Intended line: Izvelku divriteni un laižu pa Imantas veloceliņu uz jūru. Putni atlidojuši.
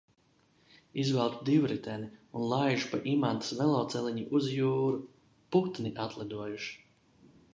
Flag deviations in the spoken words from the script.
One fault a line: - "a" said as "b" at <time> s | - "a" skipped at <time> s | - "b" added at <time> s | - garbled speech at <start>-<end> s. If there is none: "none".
none